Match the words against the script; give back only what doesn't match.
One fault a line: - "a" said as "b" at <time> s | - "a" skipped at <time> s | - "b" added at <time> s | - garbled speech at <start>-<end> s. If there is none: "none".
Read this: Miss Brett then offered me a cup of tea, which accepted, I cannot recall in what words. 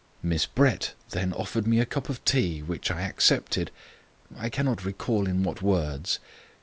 - "I" added at 2.9 s